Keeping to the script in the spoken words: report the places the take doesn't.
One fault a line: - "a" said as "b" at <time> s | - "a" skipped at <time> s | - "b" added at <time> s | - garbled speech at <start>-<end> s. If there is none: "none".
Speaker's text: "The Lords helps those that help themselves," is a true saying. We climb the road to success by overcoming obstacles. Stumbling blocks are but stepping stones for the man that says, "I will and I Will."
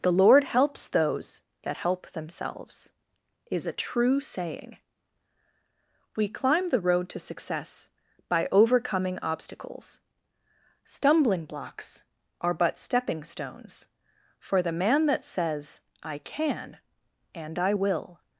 - "Lords" said as "Lord" at 0.1 s
- "will" said as "can" at 16.2 s